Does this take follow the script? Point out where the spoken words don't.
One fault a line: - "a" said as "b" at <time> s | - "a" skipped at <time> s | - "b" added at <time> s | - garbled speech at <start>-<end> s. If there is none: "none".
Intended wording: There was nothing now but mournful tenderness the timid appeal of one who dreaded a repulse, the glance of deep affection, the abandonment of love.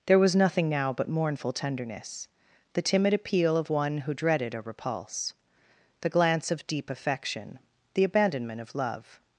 none